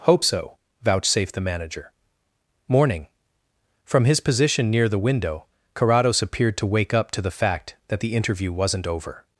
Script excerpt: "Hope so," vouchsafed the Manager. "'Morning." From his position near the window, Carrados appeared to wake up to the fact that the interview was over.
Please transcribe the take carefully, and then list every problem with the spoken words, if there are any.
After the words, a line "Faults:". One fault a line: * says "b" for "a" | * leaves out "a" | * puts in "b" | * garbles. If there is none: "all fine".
"Hope so," vouchsafed the Manager. "'Morning." From his position near the window, Carrados appeared to wake up to the fact that the interview wasn't over.
Faults:
* says "wasn't" for "was"